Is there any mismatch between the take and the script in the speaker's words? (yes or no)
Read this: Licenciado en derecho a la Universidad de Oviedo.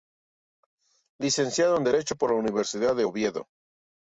yes